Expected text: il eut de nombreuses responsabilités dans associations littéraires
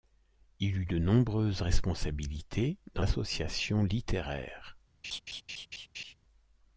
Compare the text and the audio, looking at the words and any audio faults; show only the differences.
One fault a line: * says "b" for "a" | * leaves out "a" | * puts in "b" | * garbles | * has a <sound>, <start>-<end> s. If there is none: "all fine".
* has a laugh, 5.0-6.1 s